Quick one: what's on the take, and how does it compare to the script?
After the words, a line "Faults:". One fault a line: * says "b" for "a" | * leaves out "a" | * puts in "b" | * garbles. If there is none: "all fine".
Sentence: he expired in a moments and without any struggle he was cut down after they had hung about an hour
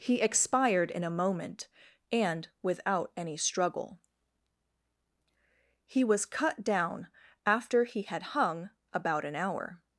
he expired in a moment and without any struggle he was cut down after he had hung about an hour
Faults:
* says "moment" for "moments"
* says "he" for "they"